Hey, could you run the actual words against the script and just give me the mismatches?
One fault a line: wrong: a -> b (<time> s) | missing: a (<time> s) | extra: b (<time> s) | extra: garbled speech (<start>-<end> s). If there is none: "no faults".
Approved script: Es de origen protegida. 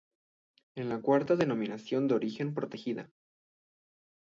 extra: la cuarta denominación (0.8 s)